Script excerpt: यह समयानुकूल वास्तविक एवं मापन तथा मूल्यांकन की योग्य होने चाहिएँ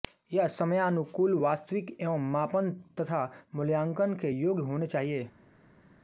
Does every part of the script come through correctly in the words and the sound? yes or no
no